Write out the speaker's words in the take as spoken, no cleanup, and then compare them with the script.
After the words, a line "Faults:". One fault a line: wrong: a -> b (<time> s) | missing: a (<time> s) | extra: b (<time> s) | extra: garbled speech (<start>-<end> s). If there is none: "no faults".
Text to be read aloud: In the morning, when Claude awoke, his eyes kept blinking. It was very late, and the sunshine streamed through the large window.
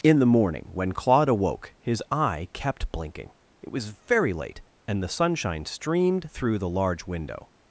In the morning, when Claude awoke, his eye kept blinking. It was very late, and the sunshine streamed through the large window.
Faults:
wrong: eyes -> eye (2.1 s)